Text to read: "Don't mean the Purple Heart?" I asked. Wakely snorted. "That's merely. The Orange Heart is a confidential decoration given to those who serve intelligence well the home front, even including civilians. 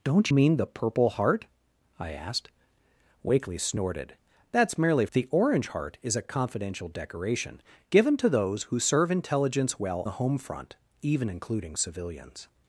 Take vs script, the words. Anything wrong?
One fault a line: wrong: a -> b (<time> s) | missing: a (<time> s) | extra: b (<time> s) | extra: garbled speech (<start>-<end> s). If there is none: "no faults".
no faults